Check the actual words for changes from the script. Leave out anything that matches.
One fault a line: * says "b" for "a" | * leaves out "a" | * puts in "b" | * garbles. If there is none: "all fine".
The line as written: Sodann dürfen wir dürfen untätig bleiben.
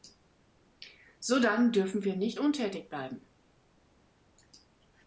* says "nicht" for "dürfen"